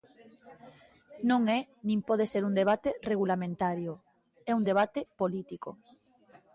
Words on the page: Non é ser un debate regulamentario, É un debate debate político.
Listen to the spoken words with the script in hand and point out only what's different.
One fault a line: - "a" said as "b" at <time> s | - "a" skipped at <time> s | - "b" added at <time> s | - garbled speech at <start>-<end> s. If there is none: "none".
- "nin pode" added at 1.9 s
- "debate" skipped at 5.0 s